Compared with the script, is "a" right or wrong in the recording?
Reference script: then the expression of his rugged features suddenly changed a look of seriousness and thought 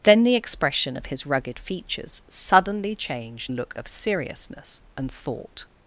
right